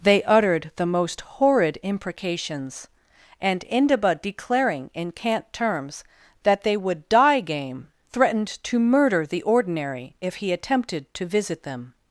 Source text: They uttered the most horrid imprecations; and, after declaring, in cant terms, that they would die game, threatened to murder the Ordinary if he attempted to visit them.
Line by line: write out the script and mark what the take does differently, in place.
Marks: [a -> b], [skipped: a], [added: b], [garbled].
They uttered the most horrid imprecations; and, [after -> indaba] declaring, in cant terms, that they would die game, threatened to murder the Ordinary if he attempted to visit them.